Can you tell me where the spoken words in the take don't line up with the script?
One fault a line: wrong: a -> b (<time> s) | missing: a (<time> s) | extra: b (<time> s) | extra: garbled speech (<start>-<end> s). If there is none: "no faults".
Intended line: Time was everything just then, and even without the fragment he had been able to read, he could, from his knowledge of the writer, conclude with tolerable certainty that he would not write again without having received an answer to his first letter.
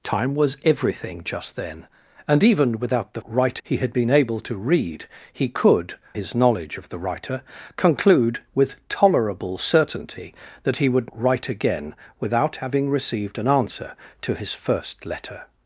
wrong: fragment -> write (3.3 s)
missing: from (5.9 s)
missing: not (11.1 s)